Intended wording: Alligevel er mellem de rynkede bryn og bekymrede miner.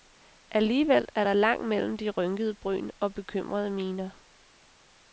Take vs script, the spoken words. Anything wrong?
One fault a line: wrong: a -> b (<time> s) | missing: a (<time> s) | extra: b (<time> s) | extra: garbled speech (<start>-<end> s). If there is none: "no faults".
extra: der langt (1.2 s)